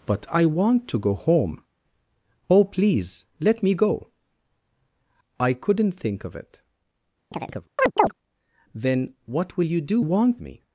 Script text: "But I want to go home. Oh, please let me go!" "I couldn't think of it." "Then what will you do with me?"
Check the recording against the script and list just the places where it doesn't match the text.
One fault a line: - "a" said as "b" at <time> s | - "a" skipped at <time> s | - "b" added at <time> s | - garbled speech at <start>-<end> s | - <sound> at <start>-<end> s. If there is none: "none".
- chirp at 7.3-8.1 s
- "with" said as "want" at 10.0 s